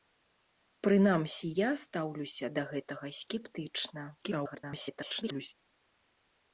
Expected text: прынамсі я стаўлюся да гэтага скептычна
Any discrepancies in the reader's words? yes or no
yes